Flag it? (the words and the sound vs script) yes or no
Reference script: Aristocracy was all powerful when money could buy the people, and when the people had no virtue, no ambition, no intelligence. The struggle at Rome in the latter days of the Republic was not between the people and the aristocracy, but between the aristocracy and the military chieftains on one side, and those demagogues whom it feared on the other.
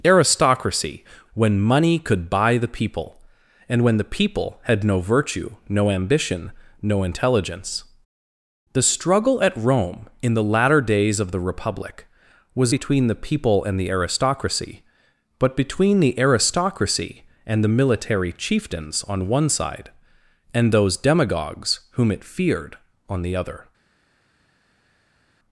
yes